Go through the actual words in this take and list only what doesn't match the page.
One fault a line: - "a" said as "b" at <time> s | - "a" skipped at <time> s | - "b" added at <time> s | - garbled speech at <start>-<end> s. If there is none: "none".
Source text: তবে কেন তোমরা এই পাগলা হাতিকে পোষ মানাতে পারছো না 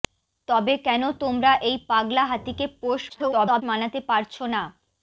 - garbled speech at 3.1-3.6 s